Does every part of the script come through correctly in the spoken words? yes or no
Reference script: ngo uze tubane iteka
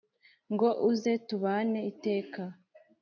yes